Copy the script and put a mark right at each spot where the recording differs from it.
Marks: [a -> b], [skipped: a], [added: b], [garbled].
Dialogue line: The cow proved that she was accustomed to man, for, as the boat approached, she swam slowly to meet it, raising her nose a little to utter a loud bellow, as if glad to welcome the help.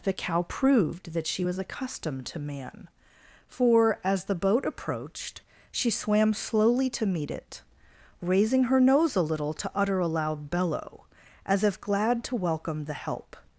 The cow proved that she was accustomed to man, for, as the boat approached, she swam slowly to meet it, raising her nose a little to utter a loud bellow, as if glad to welcome the help.